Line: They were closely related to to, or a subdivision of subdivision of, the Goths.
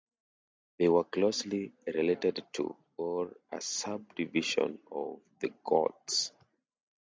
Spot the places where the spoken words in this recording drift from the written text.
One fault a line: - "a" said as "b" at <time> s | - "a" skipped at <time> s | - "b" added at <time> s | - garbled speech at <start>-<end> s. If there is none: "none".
- "to" skipped at 2.8 s
- "subdivision of" skipped at 5.2 s